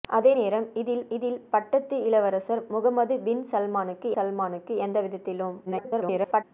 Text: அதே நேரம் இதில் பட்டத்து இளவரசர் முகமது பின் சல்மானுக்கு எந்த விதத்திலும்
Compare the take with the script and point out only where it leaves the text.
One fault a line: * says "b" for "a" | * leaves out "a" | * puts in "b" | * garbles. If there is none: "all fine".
* puts in "இதில்"
* puts in "சல்மானுக்கு"
* garbles